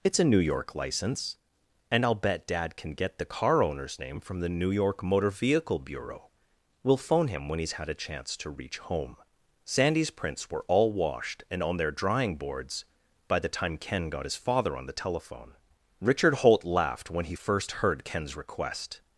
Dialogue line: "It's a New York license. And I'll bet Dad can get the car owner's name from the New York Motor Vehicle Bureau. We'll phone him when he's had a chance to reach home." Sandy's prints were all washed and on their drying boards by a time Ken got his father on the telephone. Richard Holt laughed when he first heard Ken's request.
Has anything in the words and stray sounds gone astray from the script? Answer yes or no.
yes